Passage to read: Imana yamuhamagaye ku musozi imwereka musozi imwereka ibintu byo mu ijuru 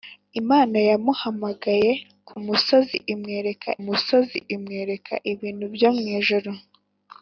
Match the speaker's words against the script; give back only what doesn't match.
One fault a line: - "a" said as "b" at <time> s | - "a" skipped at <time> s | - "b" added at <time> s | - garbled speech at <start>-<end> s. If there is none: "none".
none